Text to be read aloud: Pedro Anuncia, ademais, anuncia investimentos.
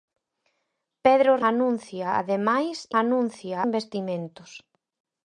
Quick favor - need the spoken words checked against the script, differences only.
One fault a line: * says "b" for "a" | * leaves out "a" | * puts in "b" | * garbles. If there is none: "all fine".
all fine